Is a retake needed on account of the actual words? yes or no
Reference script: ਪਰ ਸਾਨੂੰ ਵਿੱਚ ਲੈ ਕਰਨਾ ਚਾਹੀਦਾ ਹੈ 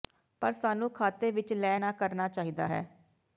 yes